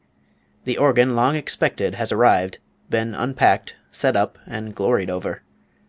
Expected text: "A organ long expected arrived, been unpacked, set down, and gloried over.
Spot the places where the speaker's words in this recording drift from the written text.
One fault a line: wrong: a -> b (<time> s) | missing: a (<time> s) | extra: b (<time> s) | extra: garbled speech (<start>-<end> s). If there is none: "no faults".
wrong: A -> The (0.7 s)
extra: has (1.9 s)
wrong: down -> up (4.2 s)